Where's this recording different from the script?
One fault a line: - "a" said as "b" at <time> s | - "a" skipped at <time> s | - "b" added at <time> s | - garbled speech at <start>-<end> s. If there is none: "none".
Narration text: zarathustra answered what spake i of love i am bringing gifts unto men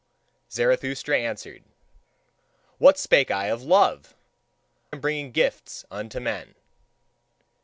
- "i" skipped at 4.2 s